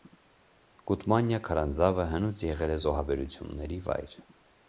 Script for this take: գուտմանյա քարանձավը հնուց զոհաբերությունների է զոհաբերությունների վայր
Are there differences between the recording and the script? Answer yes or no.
yes